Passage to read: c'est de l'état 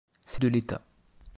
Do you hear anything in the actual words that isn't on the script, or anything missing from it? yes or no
no